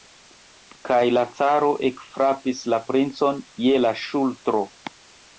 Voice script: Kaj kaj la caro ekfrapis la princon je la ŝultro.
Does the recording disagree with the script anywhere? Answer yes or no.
yes